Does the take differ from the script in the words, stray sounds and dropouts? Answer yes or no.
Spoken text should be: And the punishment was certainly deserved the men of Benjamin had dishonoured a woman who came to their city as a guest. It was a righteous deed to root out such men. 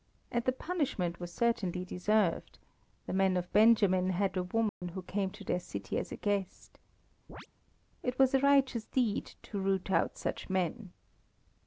yes